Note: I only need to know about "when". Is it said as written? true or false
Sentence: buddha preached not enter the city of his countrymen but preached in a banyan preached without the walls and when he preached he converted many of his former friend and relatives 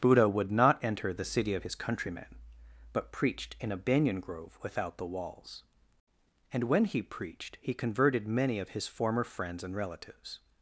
true